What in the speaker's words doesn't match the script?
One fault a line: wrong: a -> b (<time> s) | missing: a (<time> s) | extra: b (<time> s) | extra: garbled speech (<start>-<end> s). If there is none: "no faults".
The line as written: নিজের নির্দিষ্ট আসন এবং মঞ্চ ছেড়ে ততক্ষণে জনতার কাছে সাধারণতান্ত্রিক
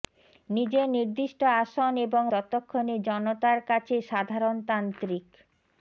missing: মঞ্চ ছেড়ে (2.2 s)